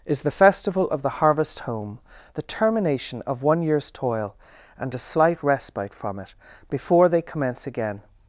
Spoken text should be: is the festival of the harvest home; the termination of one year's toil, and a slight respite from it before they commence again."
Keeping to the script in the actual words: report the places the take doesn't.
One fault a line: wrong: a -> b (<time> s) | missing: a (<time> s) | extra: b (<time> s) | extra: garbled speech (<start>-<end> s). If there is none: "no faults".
no faults